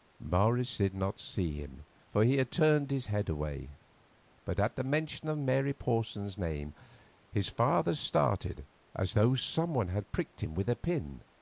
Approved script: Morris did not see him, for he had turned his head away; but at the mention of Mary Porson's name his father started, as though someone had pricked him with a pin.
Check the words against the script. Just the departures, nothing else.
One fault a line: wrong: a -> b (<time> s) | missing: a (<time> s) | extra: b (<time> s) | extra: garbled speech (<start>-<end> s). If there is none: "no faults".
no faults